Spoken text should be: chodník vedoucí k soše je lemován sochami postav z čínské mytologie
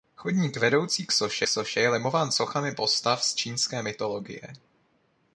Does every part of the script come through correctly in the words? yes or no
no